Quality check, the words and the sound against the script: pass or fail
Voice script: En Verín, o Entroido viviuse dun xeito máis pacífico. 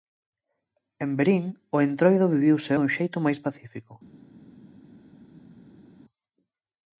pass